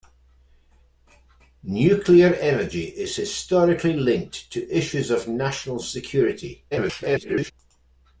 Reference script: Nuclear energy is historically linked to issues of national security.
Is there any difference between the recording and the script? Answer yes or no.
yes